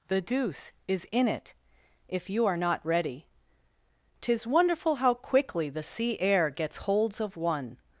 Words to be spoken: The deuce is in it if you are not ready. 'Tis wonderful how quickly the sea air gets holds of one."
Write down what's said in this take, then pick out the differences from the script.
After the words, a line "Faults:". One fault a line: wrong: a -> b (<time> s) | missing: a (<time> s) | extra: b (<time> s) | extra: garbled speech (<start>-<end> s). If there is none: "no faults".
The deuce is in it if you are not ready. 'Tis wonderful how quickly the sea air gets holds of one."
Faults:
no faults